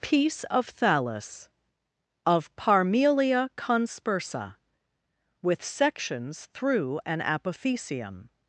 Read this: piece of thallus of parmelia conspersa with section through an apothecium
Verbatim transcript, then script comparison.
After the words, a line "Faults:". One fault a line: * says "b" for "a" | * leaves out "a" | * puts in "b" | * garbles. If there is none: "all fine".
piece of thallus of parmelia conspersa with sections through an apothecium
Faults:
* says "sections" for "section"